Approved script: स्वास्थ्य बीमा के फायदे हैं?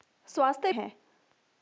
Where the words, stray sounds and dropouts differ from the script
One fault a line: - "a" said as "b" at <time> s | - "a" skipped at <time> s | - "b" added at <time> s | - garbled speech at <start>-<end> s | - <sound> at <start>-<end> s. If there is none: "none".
- "बीमा के फायदे" skipped at 0.7 s